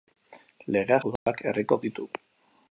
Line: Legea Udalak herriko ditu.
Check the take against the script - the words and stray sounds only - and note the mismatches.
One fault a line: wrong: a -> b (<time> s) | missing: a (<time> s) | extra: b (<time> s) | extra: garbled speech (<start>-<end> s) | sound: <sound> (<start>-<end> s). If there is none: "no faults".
sound: dropout (1.2-1.3 s)